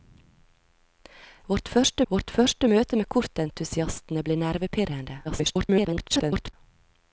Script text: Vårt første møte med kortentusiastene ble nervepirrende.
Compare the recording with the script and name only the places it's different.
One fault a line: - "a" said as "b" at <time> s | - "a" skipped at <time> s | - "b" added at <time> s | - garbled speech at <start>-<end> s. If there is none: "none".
- "vårt første" added at 2.1 s
- garbled speech at 5.2-6.5 s